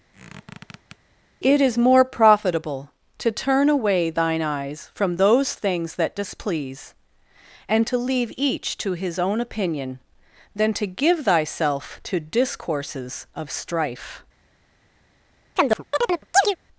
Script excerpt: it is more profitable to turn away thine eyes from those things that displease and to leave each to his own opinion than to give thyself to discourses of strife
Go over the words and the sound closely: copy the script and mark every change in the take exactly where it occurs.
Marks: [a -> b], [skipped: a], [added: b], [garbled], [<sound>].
[squeak] it is more profitable to turn away thine eyes from those things that displease and to leave each to his own opinion than to give thyself to discourses of strife [chirp]